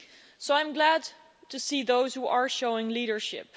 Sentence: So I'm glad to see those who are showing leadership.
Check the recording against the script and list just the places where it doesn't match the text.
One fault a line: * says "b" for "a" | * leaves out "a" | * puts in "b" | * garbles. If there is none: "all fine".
all fine